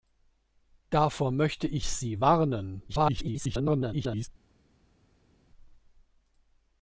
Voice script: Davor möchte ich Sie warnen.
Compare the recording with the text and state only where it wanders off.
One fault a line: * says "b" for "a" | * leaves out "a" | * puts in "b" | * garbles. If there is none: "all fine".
* garbles